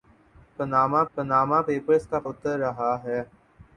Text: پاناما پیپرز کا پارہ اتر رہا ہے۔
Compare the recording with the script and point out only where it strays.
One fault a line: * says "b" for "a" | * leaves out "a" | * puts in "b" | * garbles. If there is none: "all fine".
* puts in "پاناما"
* leaves out "پارہ"